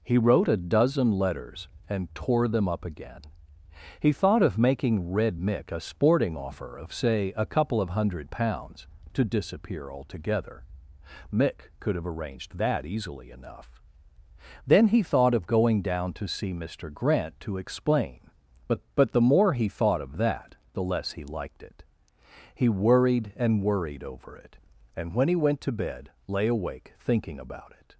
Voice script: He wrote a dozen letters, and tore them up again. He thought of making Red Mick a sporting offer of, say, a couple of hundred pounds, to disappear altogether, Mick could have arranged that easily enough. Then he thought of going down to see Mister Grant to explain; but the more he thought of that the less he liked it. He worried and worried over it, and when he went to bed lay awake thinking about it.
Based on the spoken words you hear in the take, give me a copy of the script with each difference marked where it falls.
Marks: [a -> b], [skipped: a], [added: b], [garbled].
He wrote a dozen letters, and tore them up again. He thought of making Red Mick a sporting offer of, say, a couple of hundred pounds, to disappear altogether, Mick could have arranged that easily enough. Then he thought of going down to see Mister Grant to explain; but [added: but] the more he thought of that the less he liked it. He worried and worried over it, and when he went to bed lay awake thinking about it.